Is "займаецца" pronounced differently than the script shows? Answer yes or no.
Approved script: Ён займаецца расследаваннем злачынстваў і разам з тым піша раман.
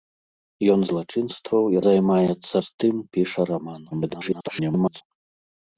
yes